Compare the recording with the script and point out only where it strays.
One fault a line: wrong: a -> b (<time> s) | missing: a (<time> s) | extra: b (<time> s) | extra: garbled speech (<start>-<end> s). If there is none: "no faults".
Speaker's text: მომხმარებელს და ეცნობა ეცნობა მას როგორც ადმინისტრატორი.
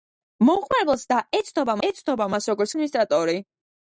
no faults